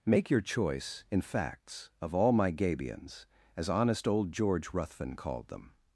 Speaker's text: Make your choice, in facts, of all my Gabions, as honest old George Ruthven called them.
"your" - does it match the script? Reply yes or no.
yes